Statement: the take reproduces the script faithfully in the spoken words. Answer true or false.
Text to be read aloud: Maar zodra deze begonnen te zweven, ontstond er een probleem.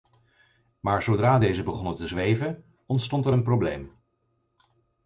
true